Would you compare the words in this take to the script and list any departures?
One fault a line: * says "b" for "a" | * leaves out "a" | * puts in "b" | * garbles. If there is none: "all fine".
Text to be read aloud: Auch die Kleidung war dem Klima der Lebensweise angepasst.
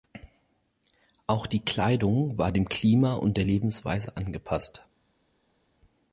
* puts in "und"